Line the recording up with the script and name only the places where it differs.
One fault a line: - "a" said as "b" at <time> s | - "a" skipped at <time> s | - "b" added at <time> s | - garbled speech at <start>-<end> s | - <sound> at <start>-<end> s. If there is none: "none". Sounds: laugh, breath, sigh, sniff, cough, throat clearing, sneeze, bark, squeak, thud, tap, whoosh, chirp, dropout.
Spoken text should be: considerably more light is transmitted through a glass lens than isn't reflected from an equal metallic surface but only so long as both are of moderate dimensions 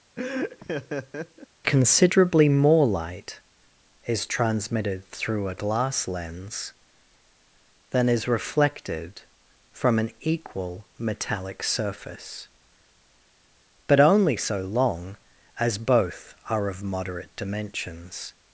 - laugh at 0.2-1.5 s
- "isn't" said as "is" at 8.1 s